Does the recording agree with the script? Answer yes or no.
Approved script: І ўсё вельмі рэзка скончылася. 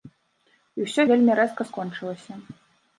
yes